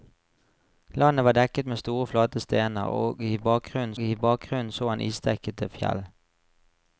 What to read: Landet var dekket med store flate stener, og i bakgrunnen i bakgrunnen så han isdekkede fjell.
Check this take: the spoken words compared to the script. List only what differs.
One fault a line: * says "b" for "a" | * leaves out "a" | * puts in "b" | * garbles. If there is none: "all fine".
all fine